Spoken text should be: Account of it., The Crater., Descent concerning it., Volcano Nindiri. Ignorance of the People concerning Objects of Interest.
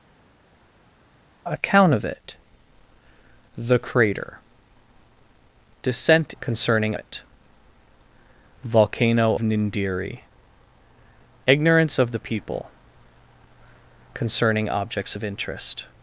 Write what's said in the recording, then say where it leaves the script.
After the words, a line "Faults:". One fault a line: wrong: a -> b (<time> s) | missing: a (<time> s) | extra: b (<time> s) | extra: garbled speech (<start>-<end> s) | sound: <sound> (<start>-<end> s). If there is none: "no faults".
Account of it., The Crater., Descent concerning it., Volcano Nindiri. Ignorance of the People concerning Objects of Interest.
Faults:
no faults